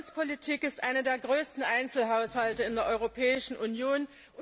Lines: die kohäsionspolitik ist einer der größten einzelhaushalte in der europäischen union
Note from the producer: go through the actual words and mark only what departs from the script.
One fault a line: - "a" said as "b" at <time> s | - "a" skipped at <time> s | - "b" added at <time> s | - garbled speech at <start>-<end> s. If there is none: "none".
none